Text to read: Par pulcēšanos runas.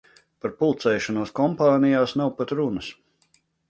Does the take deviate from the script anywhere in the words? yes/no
yes